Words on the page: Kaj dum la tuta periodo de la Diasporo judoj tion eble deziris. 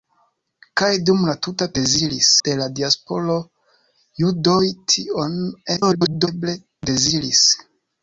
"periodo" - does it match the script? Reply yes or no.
no